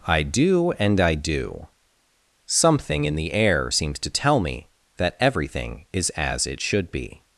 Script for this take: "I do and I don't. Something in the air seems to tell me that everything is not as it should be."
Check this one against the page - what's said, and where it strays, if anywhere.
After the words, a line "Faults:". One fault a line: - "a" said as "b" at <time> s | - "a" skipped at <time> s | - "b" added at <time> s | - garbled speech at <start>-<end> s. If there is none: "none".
"I do and I do. Something in the air seems to tell me that everything is as it should be."
Faults:
- "don't" said as "do" at 1.1 s
- "not" skipped at 6.1 s